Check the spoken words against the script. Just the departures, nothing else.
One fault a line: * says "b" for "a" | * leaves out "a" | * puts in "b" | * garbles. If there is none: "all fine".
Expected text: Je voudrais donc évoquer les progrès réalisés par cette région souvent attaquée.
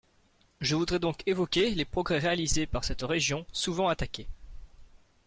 all fine